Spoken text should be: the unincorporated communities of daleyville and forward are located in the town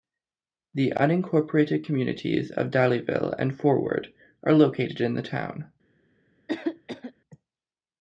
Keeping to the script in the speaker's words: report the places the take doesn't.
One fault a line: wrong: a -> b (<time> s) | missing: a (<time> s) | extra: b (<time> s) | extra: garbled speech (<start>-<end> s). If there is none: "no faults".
no faults